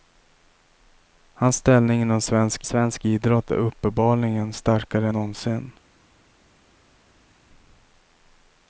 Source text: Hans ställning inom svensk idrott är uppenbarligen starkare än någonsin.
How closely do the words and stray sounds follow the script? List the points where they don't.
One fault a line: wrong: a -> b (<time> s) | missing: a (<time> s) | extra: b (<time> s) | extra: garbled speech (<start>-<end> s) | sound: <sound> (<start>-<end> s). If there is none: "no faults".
extra: svensk (2.6 s)
missing: än (5.1 s)